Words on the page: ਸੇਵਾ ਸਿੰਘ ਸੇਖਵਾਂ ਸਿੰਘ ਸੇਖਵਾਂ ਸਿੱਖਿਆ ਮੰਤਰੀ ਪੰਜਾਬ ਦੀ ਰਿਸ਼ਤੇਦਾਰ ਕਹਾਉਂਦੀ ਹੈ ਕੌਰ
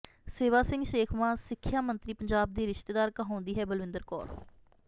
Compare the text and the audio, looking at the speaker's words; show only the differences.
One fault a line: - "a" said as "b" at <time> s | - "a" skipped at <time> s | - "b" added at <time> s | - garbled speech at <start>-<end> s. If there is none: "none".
- "ਸਿੰਘ ਸੇਖਵਾਂ" skipped at 1.4 s
- "ਬਲਵਿੰਦਰ" added at 3.6 s